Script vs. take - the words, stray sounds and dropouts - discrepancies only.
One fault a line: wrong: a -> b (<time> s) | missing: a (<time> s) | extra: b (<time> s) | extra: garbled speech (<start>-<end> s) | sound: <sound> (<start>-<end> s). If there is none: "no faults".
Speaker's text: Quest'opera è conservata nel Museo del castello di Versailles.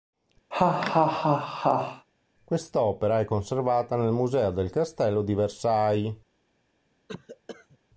sound: laugh (0.5-2.1 s)
sound: cough (7.1-7.8 s)